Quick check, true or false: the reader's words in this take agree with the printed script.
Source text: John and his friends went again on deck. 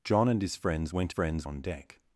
false